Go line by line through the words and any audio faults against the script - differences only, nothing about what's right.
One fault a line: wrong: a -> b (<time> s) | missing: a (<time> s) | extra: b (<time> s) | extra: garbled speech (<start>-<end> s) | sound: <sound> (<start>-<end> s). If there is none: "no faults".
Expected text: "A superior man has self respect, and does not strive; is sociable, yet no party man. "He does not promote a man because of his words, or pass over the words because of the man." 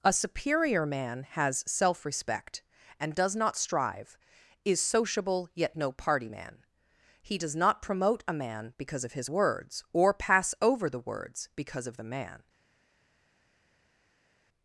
no faults